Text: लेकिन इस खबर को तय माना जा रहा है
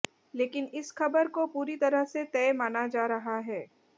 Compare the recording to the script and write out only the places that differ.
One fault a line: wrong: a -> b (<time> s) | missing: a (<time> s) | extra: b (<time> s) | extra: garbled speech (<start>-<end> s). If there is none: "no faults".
extra: पूरी तरह से (1.5 s)